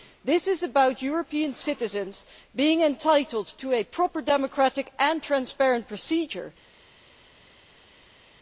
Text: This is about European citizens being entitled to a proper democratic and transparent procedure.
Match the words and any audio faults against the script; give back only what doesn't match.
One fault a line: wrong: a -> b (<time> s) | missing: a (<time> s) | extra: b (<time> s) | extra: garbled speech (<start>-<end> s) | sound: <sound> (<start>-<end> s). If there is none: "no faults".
no faults